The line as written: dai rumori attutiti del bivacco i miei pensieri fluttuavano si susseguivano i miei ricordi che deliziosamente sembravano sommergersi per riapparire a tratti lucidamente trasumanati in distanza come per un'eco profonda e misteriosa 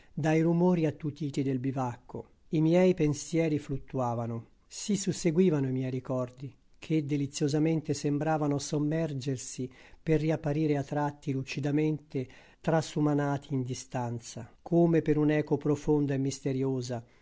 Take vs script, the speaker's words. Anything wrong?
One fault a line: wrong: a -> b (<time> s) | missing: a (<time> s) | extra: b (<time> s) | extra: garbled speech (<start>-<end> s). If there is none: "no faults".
no faults